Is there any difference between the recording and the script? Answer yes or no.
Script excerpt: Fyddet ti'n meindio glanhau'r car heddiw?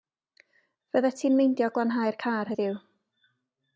no